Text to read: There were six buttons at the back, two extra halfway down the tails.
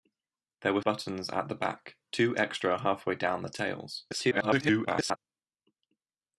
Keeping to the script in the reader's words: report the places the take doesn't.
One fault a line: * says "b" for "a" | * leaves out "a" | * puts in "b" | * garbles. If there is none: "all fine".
* leaves out "six"
* garbles